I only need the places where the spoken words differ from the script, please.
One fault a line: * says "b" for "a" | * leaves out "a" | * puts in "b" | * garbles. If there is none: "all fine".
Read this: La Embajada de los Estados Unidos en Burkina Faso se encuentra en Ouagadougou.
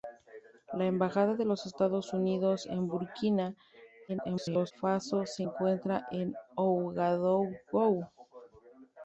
* garbles